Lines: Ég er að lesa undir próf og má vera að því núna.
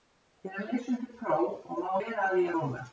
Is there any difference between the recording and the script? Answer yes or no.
no